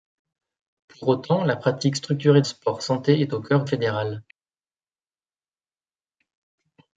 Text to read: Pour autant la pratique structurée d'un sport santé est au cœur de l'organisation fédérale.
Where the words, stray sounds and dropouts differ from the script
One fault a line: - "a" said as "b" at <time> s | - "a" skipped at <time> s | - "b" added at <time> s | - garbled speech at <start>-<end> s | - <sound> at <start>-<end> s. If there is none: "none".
- "d'un" skipped at 2.4 s
- "de l'organisation" skipped at 3.6 s